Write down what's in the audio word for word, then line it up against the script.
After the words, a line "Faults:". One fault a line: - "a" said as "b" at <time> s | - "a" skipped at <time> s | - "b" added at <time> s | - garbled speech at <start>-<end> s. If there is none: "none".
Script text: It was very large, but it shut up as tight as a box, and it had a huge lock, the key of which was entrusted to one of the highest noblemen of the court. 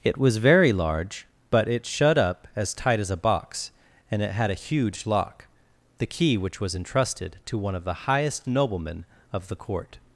It was very large, but it shut up as tight as a box, and it had a huge lock, the key which was entrusted to one of the highest noblemen of the court.
Faults:
- "of" skipped at 6.4 s